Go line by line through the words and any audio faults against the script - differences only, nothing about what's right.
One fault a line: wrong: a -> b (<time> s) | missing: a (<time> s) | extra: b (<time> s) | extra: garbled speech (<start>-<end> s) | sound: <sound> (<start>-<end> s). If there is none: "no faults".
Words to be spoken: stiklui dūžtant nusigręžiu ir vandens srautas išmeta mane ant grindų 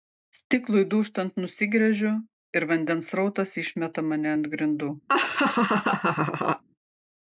sound: laugh (5.1-6.6 s)